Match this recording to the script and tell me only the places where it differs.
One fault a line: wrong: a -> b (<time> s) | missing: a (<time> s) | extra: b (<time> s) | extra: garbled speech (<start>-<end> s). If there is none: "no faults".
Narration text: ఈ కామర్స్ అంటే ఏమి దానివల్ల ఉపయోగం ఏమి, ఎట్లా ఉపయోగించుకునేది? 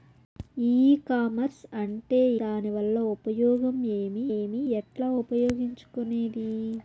missing: ఏమి (2.2 s)
extra: ఏమి (4.3 s)